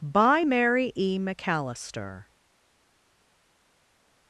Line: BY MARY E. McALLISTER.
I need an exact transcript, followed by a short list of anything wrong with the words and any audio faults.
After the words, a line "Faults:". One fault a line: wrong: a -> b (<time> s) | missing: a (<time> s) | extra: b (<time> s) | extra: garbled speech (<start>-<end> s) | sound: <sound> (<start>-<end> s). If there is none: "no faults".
BY MARY E. McALLISTER.
Faults:
no faults